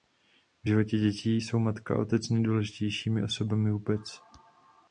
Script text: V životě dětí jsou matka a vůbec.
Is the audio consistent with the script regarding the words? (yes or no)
no